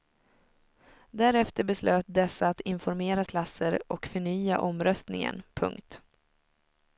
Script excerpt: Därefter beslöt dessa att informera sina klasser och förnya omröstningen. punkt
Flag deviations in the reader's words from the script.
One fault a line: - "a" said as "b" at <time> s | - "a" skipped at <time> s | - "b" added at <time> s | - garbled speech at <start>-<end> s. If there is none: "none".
- "sina" skipped at 3.2 s